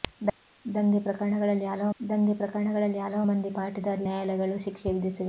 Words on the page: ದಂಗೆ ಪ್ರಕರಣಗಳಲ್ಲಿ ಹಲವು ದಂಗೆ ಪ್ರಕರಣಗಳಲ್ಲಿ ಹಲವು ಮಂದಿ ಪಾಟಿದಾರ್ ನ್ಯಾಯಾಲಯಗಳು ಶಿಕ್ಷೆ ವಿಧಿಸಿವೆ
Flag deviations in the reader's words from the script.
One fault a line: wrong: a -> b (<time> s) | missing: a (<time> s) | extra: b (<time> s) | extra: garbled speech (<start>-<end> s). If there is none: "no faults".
no faults